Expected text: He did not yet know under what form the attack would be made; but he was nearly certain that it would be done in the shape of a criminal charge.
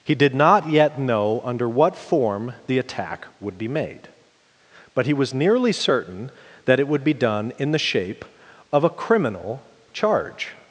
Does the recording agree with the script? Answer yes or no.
yes